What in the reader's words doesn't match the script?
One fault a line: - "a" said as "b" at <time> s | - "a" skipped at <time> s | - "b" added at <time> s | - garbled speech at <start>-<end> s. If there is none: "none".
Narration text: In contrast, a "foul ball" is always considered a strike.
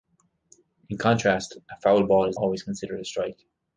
none